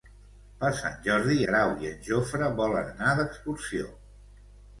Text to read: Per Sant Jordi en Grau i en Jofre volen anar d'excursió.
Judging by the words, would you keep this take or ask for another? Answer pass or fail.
fail